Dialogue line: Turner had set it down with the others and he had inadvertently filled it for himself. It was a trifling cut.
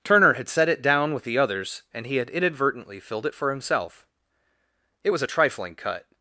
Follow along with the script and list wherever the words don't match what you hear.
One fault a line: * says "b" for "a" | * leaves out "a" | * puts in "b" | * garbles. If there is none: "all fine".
all fine